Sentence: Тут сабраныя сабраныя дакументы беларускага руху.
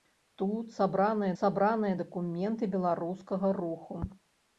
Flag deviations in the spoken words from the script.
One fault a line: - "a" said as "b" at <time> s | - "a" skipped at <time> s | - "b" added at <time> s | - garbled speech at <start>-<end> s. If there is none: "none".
none